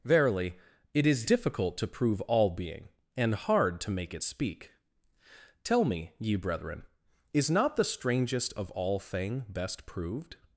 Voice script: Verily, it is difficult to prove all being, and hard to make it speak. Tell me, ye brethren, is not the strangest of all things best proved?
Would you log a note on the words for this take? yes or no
yes